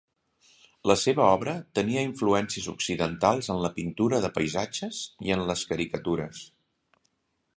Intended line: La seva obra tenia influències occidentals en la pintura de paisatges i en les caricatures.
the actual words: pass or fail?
pass